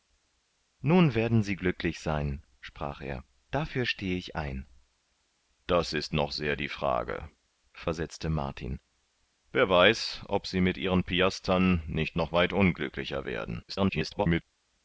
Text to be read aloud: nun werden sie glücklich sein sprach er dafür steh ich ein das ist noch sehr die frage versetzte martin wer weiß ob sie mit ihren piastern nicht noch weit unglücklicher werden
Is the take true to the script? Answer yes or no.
no